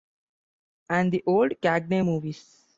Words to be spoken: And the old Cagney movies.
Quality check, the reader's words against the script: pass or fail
pass